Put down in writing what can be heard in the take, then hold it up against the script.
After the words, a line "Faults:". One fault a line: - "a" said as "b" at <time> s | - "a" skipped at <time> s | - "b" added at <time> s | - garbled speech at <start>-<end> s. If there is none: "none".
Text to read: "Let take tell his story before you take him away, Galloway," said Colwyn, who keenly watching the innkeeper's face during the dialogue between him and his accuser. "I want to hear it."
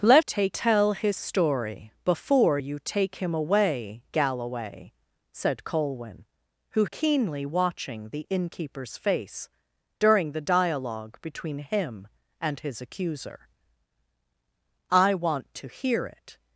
"Let take tell his story before you take him away, Galloway," said Colwyn, who keenly watching the innkeeper's face during the dialogue between him and his accuser. "I want to hear it."
Faults:
none